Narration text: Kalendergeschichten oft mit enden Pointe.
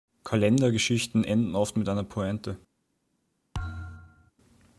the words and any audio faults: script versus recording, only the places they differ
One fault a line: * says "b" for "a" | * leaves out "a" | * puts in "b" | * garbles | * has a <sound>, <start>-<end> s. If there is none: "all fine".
* puts in "enden"
* says "einer" for "enden"
* has a thud, 3.5-4.3 s